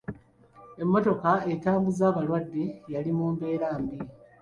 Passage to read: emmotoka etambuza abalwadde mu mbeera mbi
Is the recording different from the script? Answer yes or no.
yes